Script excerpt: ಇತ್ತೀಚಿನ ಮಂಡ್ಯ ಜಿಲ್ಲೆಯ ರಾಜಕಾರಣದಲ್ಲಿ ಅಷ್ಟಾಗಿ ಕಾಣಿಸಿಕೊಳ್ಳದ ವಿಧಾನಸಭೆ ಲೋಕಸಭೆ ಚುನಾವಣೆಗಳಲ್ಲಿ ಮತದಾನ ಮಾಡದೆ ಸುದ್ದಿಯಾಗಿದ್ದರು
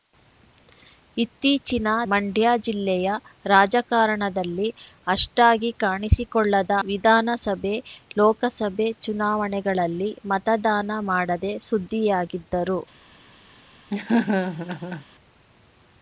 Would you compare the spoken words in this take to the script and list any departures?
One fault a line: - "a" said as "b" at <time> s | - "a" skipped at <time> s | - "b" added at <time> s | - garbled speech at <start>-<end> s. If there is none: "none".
none